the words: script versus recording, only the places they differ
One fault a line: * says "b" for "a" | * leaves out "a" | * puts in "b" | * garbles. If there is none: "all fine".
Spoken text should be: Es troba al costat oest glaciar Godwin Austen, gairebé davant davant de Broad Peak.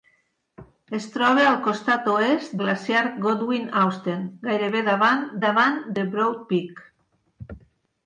all fine